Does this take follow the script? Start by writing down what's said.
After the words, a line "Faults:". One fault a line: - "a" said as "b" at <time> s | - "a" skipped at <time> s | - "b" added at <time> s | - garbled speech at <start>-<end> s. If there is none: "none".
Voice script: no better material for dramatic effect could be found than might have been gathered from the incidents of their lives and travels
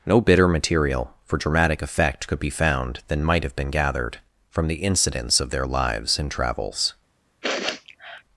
no bitter material for dramatic effect could be found than might have been gathered from the incidents of their lives and travels
Faults:
- "better" said as "bitter" at 0.2 s